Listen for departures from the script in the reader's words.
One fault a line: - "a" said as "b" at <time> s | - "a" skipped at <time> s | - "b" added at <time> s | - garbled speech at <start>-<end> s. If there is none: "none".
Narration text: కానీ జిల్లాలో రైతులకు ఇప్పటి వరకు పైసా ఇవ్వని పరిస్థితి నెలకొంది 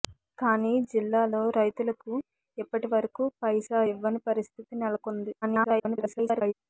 - garbled speech at 5.4-6.5 s